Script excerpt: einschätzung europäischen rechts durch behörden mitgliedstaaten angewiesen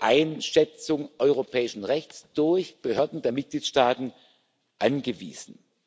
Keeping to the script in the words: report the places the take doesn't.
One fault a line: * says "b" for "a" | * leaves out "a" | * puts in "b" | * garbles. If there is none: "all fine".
* puts in "der"